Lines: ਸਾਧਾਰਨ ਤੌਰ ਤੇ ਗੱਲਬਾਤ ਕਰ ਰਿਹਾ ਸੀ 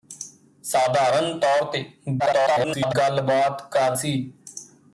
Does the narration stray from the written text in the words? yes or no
yes